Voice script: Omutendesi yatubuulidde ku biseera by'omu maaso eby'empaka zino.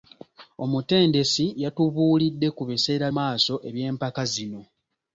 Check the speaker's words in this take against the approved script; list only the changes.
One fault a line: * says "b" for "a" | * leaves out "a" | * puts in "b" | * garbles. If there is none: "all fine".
* leaves out "by'omu"